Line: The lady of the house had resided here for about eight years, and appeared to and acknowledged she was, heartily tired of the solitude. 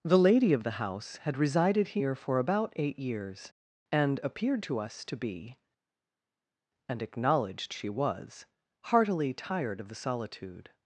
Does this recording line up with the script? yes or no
no